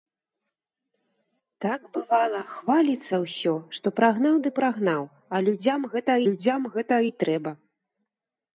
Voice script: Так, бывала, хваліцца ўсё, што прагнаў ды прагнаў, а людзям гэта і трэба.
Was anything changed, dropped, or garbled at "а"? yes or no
no